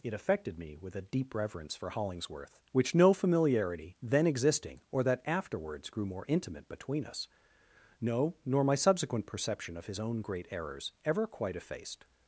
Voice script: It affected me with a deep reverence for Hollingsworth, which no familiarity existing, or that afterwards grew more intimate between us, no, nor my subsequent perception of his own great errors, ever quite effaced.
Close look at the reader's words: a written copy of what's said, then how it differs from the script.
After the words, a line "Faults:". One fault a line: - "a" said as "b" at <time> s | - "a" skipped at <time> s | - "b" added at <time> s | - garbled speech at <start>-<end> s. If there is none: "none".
It affected me with a deep reverence for Hollingsworth, which no familiarity then existing, or that afterwards grew more intimate between us, no, nor my subsequent perception of his own great errors, ever quite effaced.
Faults:
- "then" added at 4.0 s